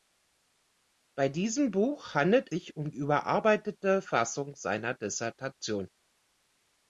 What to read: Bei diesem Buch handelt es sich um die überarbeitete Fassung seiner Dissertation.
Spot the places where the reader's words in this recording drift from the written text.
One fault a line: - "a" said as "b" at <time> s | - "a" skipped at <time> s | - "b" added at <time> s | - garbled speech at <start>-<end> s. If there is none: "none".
- "es" skipped at 2.5 s
- "die" skipped at 2.9 s